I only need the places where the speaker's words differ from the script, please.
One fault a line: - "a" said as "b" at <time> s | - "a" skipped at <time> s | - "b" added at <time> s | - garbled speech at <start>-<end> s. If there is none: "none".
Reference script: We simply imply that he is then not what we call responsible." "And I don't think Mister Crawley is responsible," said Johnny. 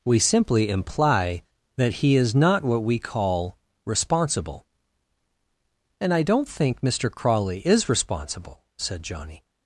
- "then" skipped at 2.3 s